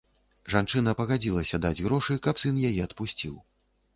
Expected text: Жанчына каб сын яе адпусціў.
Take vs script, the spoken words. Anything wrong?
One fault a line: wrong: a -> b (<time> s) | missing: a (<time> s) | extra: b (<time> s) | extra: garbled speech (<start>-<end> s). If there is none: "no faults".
extra: пагадзілася даць грошы (1.0 s)